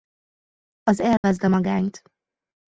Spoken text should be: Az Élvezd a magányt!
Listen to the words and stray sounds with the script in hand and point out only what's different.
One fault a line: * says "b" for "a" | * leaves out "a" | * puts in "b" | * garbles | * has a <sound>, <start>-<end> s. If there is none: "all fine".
* has a dropout, 1.2-1.2 s